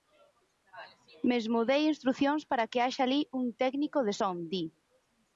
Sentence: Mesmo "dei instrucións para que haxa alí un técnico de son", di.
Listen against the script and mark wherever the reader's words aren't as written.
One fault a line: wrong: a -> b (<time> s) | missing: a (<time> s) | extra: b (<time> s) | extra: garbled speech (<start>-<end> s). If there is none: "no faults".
no faults